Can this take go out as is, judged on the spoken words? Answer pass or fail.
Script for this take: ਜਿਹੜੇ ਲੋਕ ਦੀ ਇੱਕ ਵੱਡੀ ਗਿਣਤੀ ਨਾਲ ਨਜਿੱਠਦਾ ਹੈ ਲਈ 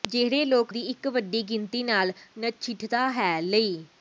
pass